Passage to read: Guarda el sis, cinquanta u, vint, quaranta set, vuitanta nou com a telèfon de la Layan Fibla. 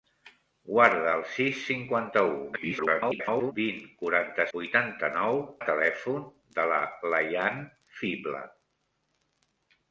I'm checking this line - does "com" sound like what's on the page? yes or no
no